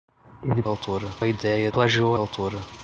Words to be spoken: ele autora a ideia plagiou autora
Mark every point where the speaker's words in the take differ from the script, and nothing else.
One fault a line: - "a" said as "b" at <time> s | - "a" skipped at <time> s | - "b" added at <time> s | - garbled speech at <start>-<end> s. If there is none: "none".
none